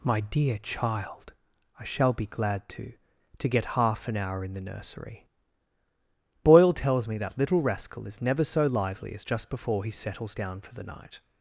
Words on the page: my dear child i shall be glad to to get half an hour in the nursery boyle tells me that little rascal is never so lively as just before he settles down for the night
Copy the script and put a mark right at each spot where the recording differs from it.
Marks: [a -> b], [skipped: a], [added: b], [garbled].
my dear child i shall be glad to to get half an hour in the nursery boyle tells me that little rascal is never so lively as just before he settles down for the night